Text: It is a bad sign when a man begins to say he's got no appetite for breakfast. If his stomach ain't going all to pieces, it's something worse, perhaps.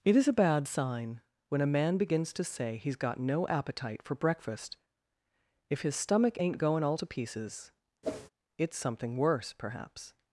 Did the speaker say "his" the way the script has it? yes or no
yes